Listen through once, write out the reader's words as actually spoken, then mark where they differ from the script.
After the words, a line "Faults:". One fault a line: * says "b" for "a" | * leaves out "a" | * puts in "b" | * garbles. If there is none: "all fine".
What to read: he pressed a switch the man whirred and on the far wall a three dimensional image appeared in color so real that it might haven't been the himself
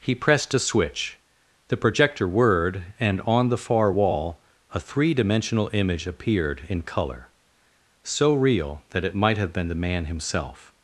he pressed a switch the projector whirred and on the far wall a three dimensional image appeared in color so real that it might have been the man himself
Faults:
* says "projector" for "man"
* says "have" for "haven't"
* puts in "man"